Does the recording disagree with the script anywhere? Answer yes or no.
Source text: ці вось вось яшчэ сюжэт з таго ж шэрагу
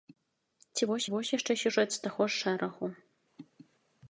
no